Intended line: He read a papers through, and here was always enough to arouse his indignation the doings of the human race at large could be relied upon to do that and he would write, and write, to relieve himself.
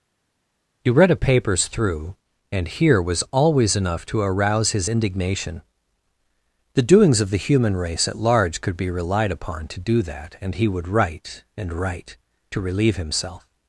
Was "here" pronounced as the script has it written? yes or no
yes